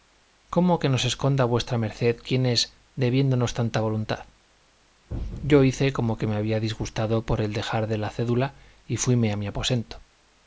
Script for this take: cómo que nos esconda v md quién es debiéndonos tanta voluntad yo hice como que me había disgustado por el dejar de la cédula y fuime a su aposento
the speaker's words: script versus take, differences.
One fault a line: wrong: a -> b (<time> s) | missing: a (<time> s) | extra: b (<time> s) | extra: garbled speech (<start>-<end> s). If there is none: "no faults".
wrong: su -> mi (9.4 s)